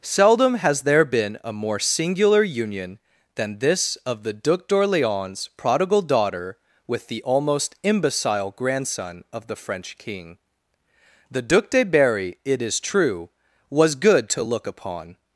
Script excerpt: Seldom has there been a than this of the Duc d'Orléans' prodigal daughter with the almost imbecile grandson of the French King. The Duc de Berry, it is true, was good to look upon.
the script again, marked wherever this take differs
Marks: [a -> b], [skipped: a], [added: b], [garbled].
Seldom has there been a [added: more singular union] than this of the Duc d'Orléans' prodigal daughter with the almost imbecile grandson of the French King. The Duc de Berry, it is true, was good to look upon.